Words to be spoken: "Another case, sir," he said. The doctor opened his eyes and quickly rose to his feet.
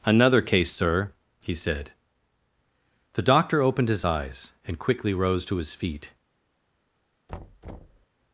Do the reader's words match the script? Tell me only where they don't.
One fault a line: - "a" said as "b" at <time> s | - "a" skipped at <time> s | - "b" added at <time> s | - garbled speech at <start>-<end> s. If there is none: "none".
none